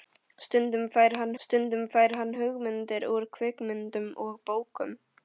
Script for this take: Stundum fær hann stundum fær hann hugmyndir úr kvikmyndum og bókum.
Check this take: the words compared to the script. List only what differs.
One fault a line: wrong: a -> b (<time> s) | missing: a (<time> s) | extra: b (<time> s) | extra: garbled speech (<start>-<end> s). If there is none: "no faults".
no faults